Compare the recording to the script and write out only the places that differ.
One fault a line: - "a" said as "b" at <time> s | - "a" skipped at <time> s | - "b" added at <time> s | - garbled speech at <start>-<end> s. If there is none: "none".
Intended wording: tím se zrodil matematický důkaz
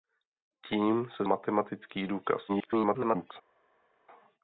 - "zrodil" skipped at 1.2 s
- garbled speech at 2.5-3.3 s